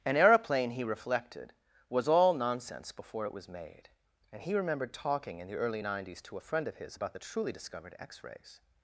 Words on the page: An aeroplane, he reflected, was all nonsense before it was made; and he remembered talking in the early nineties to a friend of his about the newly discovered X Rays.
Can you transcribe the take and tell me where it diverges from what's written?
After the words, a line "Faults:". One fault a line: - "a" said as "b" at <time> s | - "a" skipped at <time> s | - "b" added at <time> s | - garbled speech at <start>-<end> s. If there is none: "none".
An aeroplane, he reflected, was all nonsense before it was made; and he remembered talking in the early nineties to a friend of his about the truly discovered X Rays.
Faults:
- "newly" said as "truly" at 7.2 s